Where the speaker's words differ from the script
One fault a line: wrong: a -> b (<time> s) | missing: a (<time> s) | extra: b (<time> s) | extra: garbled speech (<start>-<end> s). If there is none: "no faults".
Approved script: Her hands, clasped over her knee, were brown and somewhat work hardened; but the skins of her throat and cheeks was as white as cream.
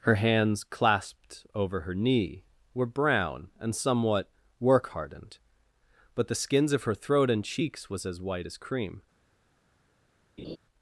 no faults